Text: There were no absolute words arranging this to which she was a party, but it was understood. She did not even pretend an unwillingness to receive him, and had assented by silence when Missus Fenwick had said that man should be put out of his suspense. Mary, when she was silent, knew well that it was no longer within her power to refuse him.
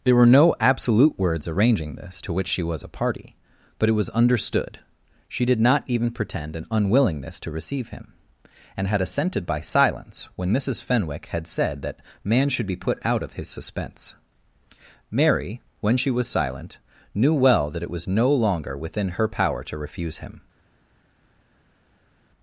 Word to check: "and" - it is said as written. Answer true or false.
true